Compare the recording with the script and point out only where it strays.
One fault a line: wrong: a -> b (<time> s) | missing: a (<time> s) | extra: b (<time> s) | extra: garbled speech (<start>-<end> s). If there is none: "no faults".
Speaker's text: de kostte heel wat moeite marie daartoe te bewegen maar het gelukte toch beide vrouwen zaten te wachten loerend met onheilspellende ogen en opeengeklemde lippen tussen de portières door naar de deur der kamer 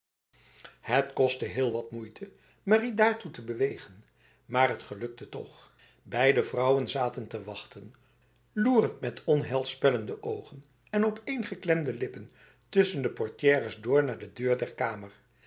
wrong: de -> het (0.8 s)